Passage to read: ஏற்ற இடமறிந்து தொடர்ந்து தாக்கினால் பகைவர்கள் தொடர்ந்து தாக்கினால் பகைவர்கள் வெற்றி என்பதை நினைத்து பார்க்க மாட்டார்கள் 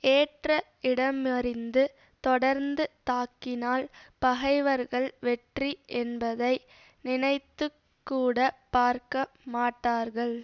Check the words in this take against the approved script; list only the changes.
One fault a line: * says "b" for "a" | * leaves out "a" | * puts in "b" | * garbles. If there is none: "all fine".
* leaves out "தொடர்ந்து தாக்கினால் பகைவர்கள்"
* puts in "கூட"